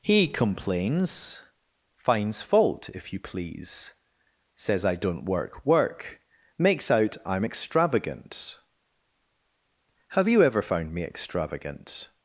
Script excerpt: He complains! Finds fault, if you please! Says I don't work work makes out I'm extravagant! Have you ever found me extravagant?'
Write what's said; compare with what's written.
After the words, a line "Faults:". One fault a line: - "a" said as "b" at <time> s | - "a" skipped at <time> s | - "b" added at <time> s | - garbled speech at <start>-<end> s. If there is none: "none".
He complains! Finds fault, if you please! Says I don't work work makes out I'm extravagant! Have you ever found me extravagant?'
Faults:
none